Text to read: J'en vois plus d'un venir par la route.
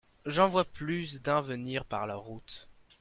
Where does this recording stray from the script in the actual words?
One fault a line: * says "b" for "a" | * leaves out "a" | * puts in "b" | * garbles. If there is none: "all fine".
all fine